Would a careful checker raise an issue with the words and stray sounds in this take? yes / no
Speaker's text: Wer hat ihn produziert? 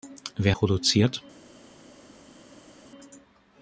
yes